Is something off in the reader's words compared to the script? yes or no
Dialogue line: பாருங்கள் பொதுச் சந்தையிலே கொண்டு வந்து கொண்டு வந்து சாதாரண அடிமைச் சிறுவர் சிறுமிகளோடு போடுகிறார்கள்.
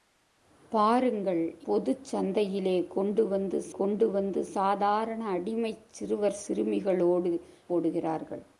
no